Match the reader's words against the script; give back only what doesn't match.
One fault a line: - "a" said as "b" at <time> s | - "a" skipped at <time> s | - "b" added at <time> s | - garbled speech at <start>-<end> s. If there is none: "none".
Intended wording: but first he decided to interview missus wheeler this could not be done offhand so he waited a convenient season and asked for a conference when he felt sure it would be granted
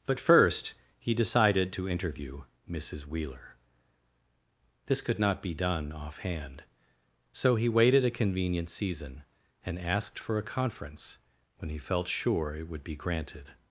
none